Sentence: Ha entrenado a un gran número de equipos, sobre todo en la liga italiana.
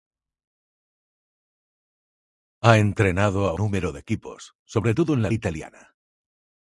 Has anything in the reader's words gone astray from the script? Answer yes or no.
yes